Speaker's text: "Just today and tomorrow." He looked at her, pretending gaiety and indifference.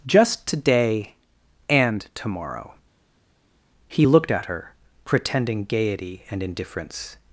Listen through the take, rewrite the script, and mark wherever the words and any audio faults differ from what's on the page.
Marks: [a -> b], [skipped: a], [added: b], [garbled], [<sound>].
"Just today and tomorrow." He looked at her, pretending gaiety and indifference.